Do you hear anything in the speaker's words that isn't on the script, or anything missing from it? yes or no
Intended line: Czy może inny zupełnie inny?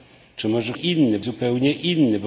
no